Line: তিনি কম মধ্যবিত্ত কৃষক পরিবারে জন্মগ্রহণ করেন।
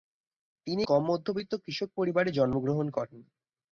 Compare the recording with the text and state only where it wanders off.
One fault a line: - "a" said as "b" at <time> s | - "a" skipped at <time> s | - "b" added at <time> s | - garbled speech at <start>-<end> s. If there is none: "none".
none